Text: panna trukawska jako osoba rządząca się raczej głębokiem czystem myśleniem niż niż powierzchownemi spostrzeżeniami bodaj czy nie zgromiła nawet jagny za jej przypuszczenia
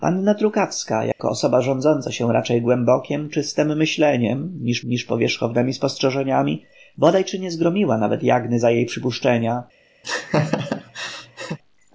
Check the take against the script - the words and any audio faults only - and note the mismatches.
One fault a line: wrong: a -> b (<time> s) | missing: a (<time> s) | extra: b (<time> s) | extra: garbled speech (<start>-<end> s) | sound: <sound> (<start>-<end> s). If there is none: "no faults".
sound: dropout (1.1-1.2 s)
sound: laugh (10.0-11.6 s)